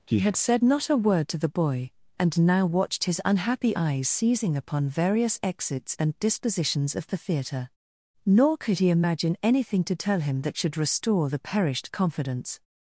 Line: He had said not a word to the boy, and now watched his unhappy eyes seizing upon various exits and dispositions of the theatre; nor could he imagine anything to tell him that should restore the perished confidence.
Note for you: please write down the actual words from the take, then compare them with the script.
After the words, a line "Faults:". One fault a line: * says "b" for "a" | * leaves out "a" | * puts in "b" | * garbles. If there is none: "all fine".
He had said not a word to the boy, and now watched his unhappy eyes seizing upon various exits and dispositions of the theatre; nor could he imagine anything to tell him that should restore the perished confidence.
Faults:
all fine